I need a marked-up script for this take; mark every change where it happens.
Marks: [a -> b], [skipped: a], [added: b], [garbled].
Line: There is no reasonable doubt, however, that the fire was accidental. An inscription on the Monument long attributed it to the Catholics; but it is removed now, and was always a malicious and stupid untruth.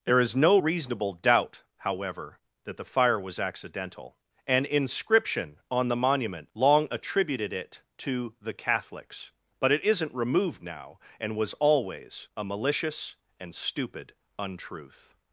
There is no reasonable doubt, however, that the fire was accidental. An inscription on the Monument long attributed it to the Catholics; but it [is -> isn't] removed now, and was always a malicious and stupid untruth.